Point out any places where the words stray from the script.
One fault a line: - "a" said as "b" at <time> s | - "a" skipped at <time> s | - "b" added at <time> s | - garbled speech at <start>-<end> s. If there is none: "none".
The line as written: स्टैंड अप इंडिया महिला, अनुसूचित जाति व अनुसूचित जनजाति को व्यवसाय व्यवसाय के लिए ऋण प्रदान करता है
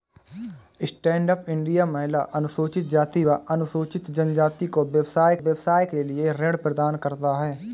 none